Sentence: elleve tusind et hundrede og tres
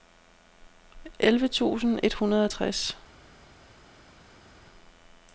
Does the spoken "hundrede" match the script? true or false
true